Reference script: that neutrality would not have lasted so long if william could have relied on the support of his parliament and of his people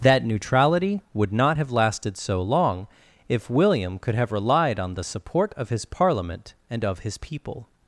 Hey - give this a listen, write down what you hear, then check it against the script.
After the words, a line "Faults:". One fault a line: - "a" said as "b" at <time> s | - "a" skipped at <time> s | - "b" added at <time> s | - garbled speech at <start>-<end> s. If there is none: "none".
that neutrality would not have lasted so long if william could have relied on the support of his parliament and of his people
Faults:
none